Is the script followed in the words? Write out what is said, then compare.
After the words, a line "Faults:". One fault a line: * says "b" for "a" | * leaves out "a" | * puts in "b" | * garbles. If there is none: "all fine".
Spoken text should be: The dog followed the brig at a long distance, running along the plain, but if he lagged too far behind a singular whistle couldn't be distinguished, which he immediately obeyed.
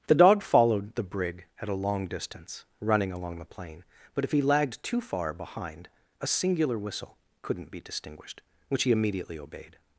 The dog followed the brig at a long distance, running along the plain, but if he lagged too far behind a singular whistle couldn't be distinguished, which he immediately obeyed.
Faults:
all fine